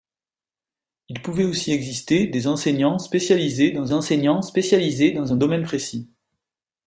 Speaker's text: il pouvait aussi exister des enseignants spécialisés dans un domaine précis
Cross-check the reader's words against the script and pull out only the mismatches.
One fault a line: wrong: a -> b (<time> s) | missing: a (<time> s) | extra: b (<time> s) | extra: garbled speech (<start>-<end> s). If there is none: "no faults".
extra: enseignants spécialisés dans (3.9 s)